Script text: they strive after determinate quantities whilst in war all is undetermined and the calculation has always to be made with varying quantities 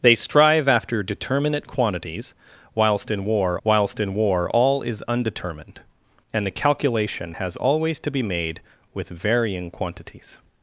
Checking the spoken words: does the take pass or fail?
fail